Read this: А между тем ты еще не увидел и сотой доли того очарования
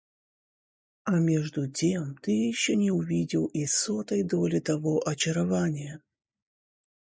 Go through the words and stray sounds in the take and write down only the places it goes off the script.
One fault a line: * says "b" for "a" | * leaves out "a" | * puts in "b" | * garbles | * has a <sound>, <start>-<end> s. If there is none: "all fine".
all fine